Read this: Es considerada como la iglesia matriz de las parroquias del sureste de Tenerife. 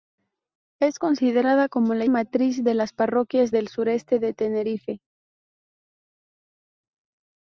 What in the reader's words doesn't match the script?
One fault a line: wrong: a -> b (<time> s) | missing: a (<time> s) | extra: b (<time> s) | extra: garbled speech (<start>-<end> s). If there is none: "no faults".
missing: iglesia (2.0 s)